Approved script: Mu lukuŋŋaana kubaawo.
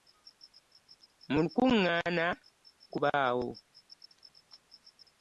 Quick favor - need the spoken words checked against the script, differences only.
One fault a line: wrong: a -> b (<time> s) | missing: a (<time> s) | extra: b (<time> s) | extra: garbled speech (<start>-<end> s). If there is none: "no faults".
no faults